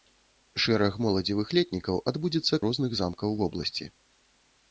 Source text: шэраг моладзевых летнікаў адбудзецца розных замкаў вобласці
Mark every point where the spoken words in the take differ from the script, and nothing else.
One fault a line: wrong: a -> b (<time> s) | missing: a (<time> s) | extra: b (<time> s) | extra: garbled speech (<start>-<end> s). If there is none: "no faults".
no faults